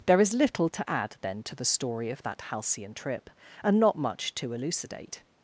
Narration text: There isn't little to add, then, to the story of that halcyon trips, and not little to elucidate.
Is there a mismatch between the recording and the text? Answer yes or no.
yes